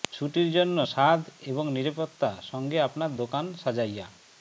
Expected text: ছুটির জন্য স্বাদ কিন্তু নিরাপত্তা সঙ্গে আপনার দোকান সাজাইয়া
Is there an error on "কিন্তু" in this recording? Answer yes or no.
yes